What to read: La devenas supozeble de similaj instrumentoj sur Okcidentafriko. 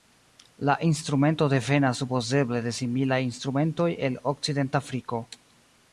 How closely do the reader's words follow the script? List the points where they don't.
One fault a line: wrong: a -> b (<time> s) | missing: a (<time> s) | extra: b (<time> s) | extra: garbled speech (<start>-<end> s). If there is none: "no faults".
extra: instrumento (0.9 s)
wrong: sur -> el (4.1 s)